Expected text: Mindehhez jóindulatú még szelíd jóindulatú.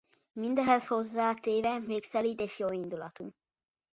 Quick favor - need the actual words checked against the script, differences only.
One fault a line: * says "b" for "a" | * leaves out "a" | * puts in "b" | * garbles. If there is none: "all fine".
* says "hozzátéve" for "jóindulatú"
* puts in "és"